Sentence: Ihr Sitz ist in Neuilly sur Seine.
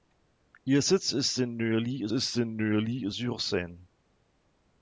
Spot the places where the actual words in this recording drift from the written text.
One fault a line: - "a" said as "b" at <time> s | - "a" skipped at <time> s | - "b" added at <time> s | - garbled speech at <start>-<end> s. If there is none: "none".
- "ist in Neuilly" added at 2.1 s